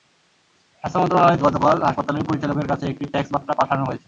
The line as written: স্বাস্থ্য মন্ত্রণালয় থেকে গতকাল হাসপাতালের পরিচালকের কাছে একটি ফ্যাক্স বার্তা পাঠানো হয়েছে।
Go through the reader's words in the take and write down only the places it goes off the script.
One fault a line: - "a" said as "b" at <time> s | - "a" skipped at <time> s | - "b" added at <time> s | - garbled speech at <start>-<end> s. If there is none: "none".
- "থেকে" skipped at 1.4 s